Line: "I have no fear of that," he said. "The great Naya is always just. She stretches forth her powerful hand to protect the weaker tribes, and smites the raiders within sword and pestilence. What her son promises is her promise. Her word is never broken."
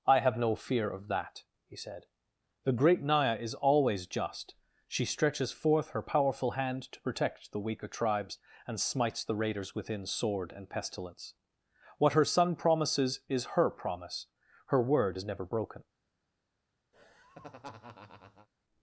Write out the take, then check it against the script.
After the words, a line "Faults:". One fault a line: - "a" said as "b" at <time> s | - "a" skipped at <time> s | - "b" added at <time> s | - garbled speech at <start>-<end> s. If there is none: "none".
"I have no fear of that," he said. "The great Naya is always just. She stretches forth her powerful hand to protect the weaker tribes, and smites the raiders within sword and pestilence. What her son promises is her promise. Her word is never broken."
Faults:
none